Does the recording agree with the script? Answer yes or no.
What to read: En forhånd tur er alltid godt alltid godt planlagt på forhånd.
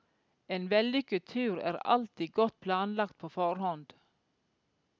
no